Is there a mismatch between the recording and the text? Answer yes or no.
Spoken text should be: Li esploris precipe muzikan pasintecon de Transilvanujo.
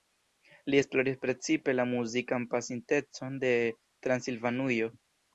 yes